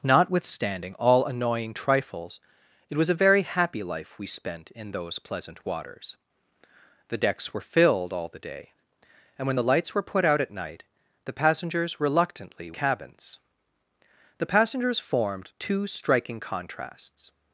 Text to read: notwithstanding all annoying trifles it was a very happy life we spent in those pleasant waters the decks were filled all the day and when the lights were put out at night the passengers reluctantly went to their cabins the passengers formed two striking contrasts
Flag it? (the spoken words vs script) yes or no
yes